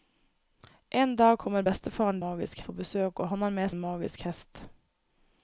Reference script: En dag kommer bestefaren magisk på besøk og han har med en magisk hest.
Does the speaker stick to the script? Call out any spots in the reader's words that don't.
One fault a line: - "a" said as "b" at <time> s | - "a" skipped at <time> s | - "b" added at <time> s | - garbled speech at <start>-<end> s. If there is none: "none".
none